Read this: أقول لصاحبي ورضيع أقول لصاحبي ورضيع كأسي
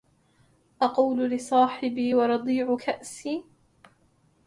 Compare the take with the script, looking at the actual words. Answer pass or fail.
fail